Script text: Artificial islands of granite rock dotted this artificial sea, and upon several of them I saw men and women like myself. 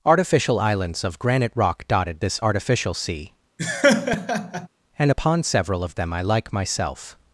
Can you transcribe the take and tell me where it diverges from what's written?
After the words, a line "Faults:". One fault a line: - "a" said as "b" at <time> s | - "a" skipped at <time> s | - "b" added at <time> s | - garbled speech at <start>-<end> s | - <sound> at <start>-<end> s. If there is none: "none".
Artificial islands of granite rock dotted this artificial sea, and upon several of them I like myself.
Faults:
- laugh at 3.6-4.7 s
- "saw men and women" skipped at 6.2 s